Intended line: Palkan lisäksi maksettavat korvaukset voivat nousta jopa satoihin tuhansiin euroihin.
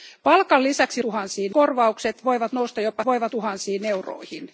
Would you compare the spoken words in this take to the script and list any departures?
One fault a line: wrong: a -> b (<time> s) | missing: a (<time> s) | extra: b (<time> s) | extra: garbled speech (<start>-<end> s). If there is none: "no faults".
wrong: maksettavat -> tuhansiin (1.0 s)
wrong: satoihin -> voivat (3.1 s)